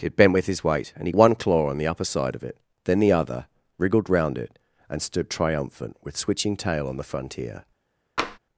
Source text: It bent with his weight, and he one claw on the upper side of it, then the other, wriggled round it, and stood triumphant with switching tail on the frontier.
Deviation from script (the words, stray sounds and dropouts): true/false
true